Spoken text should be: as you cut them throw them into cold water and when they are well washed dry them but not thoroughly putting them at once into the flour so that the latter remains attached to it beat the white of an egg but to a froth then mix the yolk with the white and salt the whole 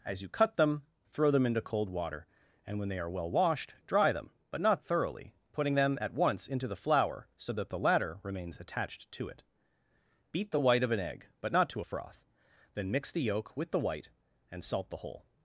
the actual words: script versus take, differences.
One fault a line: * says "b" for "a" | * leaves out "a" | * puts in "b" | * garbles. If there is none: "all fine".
* puts in "not"